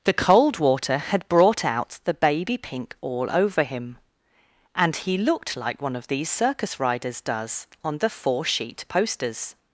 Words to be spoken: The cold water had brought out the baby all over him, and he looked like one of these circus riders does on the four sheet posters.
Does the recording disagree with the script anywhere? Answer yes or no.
yes